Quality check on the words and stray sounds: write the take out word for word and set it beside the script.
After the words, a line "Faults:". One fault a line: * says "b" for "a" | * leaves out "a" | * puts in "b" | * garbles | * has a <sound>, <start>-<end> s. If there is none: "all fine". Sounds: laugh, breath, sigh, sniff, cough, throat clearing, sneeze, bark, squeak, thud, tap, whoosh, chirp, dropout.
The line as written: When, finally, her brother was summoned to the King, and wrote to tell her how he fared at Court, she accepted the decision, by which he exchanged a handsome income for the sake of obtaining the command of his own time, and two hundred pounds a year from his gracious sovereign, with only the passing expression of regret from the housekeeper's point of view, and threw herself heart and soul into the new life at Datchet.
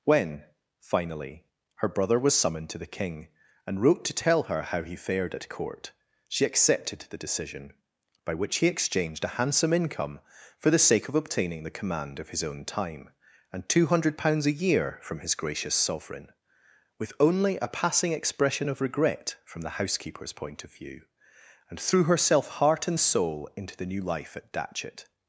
When, finally, her brother was summoned to the King, and wrote to tell her how he fared at Court, she accepted the decision, by which he exchanged a handsome income for the sake of obtaining the command of his own time, and two hundred pounds a year from his gracious sovereign, with only a passing expression of regret from the housekeeper's point of view, and threw herself heart and soul into the new life at Datchet.
Faults:
* says "a" for "the"